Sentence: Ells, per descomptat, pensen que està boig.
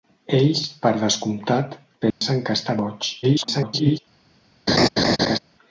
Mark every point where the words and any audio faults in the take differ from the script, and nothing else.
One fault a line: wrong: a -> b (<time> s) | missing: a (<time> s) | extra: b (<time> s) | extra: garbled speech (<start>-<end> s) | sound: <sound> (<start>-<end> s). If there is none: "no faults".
sound: dropout (2.1-2.2 s)
extra: garbled speech (3.2-4.0 s)
sound: laugh (4.7-5.4 s)